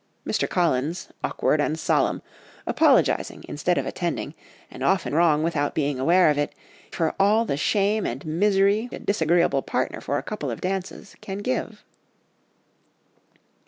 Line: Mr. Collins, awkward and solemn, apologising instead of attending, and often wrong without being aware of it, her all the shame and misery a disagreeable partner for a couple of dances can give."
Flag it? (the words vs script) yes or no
no